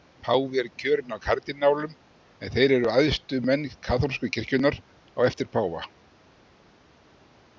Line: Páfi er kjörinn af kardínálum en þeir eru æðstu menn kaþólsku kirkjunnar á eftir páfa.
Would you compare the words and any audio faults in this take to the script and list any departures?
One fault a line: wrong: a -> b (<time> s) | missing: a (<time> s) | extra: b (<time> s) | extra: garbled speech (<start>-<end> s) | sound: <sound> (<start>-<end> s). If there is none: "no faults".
no faults